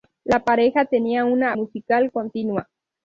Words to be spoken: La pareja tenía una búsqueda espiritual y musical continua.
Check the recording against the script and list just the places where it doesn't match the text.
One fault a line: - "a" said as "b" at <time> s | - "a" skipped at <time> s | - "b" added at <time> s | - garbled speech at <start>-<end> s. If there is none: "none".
- "búsqueda espiritual y" skipped at 1.6 s